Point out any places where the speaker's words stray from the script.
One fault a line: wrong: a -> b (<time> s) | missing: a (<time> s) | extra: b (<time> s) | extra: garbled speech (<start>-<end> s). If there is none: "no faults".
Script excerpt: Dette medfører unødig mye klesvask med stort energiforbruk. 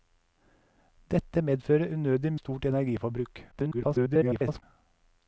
missing: mye klesvask med (2.3 s)
extra: garbled speech (3.5-4.6 s)